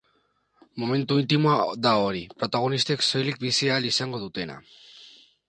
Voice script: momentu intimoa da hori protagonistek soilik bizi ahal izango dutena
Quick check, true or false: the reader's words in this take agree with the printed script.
true